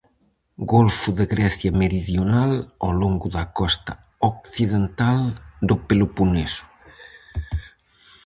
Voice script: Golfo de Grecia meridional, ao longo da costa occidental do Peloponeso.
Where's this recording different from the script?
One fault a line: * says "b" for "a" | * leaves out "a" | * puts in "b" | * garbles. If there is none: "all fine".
all fine